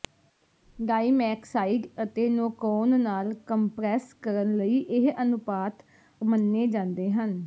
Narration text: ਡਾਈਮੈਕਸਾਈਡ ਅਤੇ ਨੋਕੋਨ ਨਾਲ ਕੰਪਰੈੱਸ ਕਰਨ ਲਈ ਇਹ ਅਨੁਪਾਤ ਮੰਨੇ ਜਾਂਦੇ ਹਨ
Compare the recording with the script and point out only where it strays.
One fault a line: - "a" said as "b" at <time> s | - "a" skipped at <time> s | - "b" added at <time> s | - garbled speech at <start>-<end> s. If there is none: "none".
none